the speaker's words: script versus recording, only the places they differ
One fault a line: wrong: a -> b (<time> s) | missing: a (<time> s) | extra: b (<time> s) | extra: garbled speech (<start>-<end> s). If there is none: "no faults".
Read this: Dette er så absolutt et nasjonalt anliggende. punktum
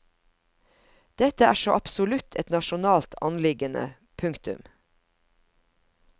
no faults